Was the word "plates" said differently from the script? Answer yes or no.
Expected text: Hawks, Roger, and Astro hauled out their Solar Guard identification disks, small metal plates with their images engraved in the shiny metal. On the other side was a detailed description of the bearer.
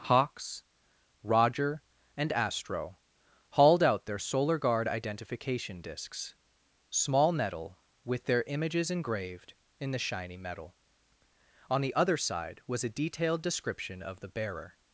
yes